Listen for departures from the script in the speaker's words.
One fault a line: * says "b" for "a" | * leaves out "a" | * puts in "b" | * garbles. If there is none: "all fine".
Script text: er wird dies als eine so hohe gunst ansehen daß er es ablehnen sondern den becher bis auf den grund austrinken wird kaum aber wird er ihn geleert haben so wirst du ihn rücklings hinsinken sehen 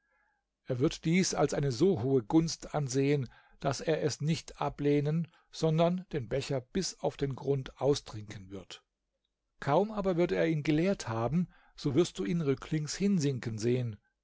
* puts in "nicht"